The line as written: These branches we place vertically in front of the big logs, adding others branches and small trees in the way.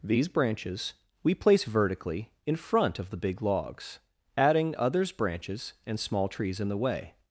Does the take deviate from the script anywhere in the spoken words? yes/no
no